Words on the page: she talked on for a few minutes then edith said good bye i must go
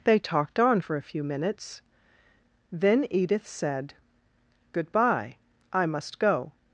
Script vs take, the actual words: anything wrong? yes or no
yes